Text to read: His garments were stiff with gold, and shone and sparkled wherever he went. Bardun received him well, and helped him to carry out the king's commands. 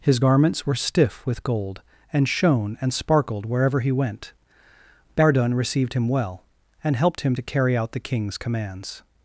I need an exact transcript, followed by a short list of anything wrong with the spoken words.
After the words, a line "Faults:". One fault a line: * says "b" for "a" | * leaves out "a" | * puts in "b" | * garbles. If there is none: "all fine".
His garments were stiff with gold, and shone and sparkled wherever he went. Bardun received him well, and helped him to carry out the king's commands.
Faults:
all fine